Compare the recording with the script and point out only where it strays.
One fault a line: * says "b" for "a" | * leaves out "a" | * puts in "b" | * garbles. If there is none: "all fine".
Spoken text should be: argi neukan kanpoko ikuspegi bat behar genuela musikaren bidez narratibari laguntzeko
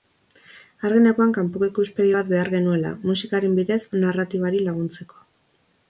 all fine